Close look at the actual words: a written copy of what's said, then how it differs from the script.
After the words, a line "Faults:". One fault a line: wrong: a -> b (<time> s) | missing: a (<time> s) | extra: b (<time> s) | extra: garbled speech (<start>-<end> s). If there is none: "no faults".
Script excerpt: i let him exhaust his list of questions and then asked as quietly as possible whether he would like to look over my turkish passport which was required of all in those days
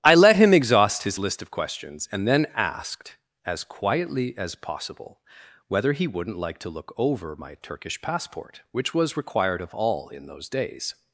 i let him exhaust his list of questions and then asked as quietly as possible whether he wouldn't like to look over my turkish passport which was required of all in those days
Faults:
wrong: would -> wouldn't (6.1 s)